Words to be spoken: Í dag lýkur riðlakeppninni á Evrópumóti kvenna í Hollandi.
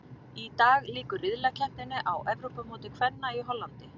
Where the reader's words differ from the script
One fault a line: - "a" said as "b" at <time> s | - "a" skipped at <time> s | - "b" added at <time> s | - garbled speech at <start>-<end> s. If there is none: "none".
none